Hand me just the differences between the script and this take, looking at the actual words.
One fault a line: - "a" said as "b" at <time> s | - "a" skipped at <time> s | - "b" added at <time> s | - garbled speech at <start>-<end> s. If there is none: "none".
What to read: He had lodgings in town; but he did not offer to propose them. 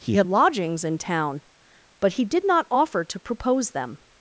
none